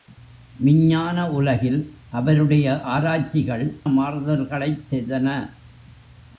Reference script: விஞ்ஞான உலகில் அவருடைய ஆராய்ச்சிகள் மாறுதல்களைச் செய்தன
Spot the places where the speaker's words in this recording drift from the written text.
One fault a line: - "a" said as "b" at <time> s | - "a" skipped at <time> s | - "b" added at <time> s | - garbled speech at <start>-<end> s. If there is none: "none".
none